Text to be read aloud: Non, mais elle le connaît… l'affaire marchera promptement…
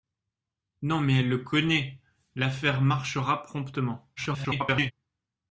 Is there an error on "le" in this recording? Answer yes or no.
no